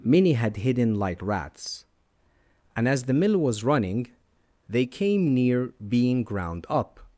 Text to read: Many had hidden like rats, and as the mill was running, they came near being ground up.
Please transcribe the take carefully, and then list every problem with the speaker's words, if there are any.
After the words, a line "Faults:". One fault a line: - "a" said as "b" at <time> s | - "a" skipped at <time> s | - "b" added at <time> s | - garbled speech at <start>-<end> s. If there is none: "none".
Many had hidden like rats, and as the mill was running, they came near being ground up.
Faults:
none